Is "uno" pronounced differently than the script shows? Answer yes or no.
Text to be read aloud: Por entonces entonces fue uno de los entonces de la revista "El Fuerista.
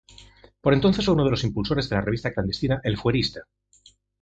no